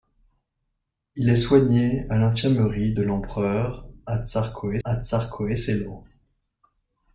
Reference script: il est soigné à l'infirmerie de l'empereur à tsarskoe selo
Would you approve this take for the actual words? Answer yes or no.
no